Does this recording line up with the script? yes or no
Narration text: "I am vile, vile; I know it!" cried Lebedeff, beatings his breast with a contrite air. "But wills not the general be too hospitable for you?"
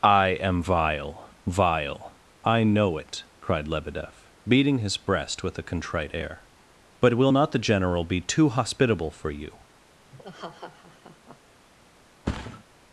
no